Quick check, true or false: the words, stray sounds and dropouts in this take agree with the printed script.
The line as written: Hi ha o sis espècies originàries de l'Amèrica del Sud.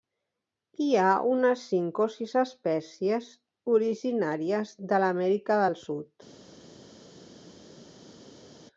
false